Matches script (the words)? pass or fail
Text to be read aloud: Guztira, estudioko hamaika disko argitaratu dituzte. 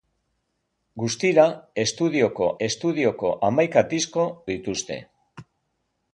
fail